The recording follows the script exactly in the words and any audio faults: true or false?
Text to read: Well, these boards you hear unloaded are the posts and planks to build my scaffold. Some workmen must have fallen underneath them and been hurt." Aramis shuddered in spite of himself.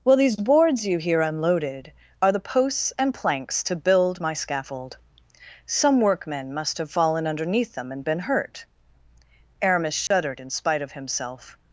false